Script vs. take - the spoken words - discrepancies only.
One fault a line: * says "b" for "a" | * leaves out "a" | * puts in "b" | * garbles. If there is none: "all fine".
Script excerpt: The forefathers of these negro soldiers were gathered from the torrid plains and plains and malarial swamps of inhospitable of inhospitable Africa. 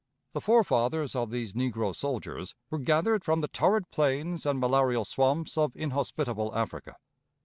* leaves out "plains and"
* leaves out "of inhospitable"